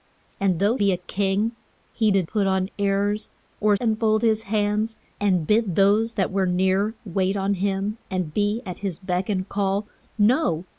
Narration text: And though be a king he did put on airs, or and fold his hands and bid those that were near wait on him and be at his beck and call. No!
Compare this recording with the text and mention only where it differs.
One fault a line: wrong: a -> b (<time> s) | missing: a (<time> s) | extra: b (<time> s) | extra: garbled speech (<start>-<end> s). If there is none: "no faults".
no faults